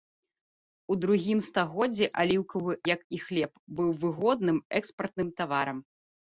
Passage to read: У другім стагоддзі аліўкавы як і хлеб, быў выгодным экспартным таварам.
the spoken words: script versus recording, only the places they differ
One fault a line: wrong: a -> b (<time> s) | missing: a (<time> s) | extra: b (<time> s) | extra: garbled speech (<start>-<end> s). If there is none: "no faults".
no faults